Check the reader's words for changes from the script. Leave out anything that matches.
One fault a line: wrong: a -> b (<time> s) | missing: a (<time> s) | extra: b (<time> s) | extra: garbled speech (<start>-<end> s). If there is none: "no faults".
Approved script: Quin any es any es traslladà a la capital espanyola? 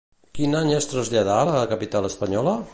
missing: any es (0.9 s)